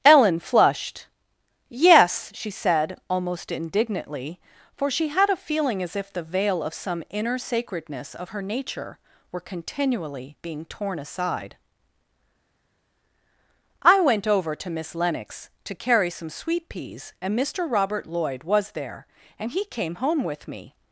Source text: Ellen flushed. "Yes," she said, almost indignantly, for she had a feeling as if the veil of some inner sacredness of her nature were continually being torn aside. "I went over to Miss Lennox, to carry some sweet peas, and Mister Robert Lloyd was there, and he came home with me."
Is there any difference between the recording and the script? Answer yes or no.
no